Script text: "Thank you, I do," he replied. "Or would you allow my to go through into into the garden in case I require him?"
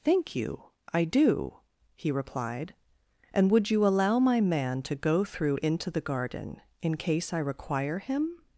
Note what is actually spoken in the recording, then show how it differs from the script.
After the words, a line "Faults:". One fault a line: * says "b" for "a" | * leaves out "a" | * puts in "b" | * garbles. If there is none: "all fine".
"Thank you, I do," he replied. "And would you allow my man to go through into the garden in case I require him?"
Faults:
* says "And" for "Or"
* puts in "man"
* leaves out "into"